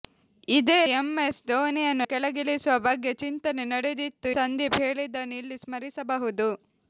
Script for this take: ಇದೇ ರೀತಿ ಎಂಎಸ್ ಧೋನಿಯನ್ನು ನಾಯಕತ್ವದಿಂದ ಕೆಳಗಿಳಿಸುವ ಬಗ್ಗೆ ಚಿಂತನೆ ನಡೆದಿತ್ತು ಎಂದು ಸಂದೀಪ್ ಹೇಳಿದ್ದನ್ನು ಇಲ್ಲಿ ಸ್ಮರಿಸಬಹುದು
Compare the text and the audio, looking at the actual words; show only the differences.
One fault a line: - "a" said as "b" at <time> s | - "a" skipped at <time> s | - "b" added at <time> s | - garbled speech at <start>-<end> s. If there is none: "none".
- "ರೀತಿ" skipped at 0.8 s
- "ನಾಯಕತ್ವದಿಂದ" skipped at 2.1 s
- "ಎಂದು" skipped at 4.3 s